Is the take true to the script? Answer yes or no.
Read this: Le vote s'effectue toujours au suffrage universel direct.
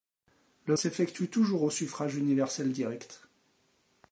no